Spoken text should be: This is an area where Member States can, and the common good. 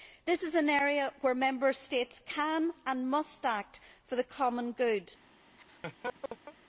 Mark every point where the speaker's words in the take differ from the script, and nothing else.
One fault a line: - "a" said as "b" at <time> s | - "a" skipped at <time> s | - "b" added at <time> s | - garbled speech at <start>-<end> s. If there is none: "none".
- "must act for" added at 3.1 s